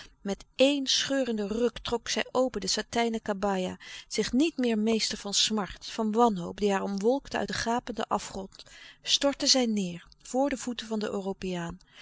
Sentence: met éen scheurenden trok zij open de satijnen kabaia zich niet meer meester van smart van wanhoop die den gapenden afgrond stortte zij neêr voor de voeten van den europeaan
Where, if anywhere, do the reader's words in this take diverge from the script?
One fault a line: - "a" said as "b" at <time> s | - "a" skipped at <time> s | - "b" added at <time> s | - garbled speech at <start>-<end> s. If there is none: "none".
- "ruk" added at 1.5 s
- "haar omwolkte uit" added at 6.7 s